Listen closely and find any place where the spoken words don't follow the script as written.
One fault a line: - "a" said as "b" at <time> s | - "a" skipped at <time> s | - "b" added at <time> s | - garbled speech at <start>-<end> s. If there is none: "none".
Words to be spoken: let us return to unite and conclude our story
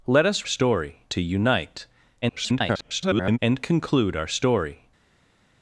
- "return" said as "story" at 0.4 s
- garbled speech at 2.2-3.4 s